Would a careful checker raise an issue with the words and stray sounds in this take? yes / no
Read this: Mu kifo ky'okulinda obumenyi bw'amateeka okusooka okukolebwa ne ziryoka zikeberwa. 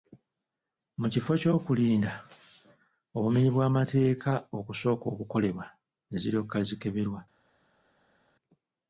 no